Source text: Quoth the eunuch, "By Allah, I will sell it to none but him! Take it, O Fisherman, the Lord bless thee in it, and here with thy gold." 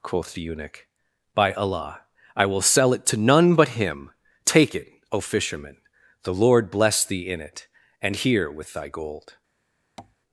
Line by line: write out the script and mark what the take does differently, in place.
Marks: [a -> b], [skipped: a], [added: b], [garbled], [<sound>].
Quoth the eunuch, "By Allah, I will sell it to none but him! Take it, O Fisherman, the Lord bless thee in it, and here with thy gold." [tap]